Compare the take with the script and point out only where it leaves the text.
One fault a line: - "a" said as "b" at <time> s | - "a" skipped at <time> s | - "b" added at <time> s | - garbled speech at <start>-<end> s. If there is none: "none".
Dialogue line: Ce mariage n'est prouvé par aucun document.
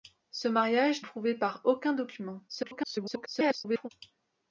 - "n'est" skipped at 1.0 s
- garbled speech at 2.5-3.9 s